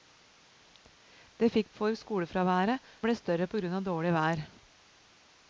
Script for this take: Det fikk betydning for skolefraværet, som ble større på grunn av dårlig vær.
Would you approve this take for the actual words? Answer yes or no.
no